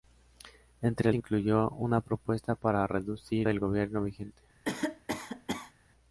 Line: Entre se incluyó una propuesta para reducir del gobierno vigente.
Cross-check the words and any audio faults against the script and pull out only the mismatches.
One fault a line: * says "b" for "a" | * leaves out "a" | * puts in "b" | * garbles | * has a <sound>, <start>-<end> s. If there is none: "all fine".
* has a cough, 4.6-5.7 s